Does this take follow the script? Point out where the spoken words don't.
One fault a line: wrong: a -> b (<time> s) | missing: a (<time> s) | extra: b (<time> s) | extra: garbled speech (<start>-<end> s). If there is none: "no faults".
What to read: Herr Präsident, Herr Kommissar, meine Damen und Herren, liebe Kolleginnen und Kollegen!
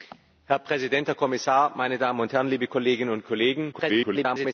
extra: garbled speech (3.7-4.5 s)